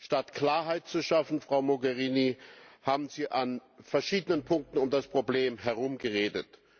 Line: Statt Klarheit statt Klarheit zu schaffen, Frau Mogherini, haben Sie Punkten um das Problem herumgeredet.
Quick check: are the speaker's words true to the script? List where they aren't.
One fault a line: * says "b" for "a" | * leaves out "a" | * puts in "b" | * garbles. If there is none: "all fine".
* leaves out "statt Klarheit"
* puts in "an verschiedenen"